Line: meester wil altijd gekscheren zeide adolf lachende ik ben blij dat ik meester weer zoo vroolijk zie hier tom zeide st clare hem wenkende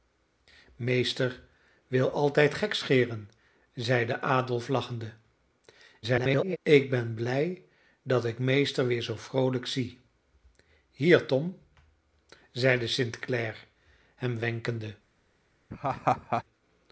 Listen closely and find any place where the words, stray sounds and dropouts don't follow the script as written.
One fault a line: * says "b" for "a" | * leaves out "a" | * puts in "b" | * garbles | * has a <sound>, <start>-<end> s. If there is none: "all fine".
* garbles
* has a laugh, 15.7-16.4 s